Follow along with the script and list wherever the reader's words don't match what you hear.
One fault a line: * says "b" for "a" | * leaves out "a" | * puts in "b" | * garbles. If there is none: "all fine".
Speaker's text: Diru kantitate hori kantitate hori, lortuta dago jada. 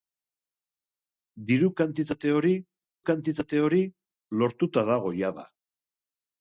all fine